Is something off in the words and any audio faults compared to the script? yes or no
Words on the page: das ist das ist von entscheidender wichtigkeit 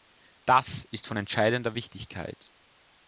yes